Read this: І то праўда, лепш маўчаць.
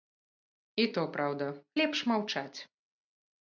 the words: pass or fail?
pass